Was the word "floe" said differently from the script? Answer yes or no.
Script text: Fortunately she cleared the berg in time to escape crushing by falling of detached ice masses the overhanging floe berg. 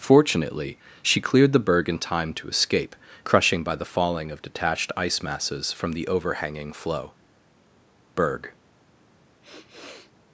no